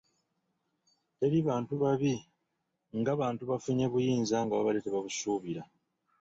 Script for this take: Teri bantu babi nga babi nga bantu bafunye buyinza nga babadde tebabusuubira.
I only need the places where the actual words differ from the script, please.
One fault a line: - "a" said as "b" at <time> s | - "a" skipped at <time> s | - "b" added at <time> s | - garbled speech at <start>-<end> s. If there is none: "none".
- "babi nga" skipped at 3.1 s